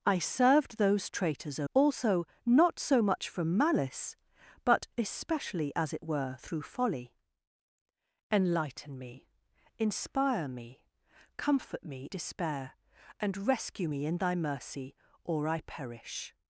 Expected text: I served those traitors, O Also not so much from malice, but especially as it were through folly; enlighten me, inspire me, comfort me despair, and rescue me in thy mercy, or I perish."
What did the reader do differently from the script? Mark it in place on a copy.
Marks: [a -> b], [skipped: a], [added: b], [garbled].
I served those traitors, O Also not so much from malice, but especially as it were through folly; enlighten me, inspire me, comfort me despair, and rescue me in thy mercy, or I perish."